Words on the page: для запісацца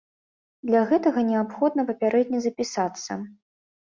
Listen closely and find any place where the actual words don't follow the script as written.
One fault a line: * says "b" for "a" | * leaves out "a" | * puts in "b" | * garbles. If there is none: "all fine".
* puts in "гэтага неабходна папярэдне"